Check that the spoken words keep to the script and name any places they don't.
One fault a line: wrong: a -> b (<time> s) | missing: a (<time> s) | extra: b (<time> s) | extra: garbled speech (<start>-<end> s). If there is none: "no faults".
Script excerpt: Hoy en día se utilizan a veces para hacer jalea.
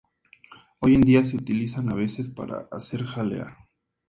no faults